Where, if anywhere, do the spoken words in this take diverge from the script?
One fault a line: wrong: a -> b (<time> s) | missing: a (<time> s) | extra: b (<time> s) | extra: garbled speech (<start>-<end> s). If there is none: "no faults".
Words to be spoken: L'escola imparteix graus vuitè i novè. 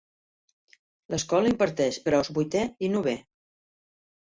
no faults